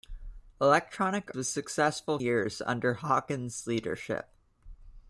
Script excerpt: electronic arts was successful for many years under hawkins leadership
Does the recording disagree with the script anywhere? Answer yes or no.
yes